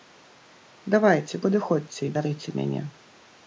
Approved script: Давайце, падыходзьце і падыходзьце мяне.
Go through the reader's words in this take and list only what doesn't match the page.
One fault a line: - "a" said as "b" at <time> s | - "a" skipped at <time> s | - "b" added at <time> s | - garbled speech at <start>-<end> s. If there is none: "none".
- "падыходзьце" said as "бярыце" at 2.2 s